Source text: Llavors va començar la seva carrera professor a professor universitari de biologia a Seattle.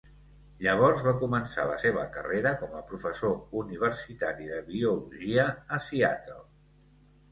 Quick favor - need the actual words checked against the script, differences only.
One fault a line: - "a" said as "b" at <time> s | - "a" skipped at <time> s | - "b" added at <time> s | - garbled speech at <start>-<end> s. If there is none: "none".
- "professor" said as "com" at 2.6 s